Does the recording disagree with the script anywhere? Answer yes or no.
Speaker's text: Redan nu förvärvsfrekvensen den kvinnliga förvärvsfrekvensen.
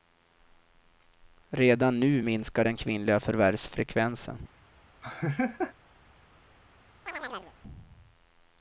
yes